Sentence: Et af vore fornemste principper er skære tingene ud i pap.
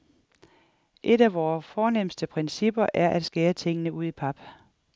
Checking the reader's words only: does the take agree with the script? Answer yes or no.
no